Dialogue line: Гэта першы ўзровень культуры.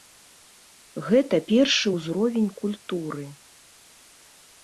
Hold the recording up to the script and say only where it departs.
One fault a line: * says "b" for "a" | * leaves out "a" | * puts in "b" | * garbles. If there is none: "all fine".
all fine